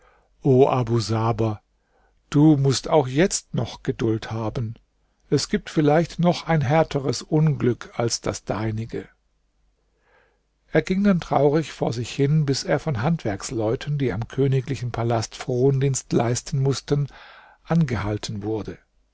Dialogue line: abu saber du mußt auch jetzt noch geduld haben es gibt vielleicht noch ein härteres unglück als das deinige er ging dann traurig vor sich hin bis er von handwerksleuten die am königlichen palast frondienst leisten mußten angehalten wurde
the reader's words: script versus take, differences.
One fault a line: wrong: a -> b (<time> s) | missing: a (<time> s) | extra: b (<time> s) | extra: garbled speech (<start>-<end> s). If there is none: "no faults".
no faults